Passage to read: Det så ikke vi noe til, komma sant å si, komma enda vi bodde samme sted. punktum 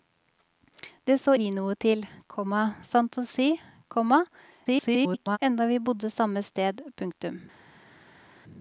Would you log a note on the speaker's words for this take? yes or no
yes